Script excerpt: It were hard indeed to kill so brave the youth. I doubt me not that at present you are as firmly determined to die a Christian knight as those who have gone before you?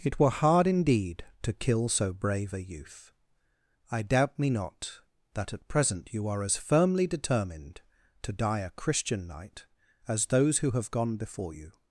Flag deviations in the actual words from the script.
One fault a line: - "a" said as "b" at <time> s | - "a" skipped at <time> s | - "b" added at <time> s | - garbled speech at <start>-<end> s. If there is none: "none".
- "the" said as "a" at 2.5 s